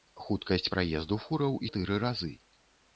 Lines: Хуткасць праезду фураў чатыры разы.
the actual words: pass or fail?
pass